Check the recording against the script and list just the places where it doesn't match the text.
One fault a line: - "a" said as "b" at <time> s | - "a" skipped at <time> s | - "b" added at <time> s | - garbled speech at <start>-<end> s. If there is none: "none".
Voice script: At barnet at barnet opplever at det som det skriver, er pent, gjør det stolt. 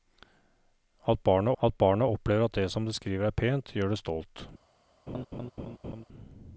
none